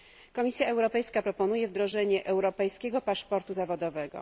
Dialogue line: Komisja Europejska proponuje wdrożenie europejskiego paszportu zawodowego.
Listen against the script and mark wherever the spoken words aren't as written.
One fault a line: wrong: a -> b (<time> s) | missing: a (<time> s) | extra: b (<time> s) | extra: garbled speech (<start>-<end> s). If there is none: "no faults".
no faults